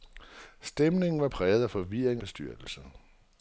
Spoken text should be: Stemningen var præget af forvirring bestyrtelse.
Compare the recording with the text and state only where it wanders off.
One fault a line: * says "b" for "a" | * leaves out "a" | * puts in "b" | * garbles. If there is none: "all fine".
all fine